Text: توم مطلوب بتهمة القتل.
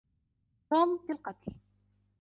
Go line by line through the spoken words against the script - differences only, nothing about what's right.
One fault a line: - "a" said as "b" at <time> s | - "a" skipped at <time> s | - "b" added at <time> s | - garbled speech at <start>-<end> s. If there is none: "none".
- "مطلوب بتهمة" skipped at 1.1 s